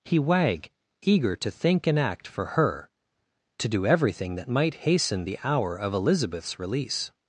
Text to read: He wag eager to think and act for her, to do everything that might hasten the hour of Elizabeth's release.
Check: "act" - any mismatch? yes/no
no